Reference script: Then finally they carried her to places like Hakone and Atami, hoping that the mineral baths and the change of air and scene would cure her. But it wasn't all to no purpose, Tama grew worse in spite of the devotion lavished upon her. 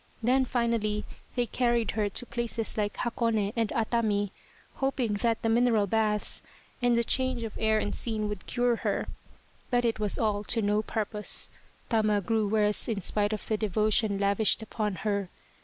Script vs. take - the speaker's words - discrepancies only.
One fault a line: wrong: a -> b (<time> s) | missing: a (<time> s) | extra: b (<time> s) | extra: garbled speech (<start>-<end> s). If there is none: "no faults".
wrong: wasn't -> was (10.0 s)